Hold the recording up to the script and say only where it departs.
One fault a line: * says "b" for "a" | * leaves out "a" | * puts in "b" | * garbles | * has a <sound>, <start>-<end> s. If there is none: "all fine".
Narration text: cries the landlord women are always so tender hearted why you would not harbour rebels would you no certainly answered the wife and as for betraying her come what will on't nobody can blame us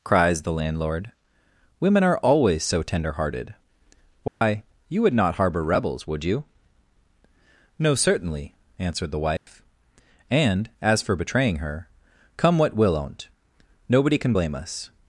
* has a dropout, 4.3-4.4 s
* has a dropout, 9.4-9.5 s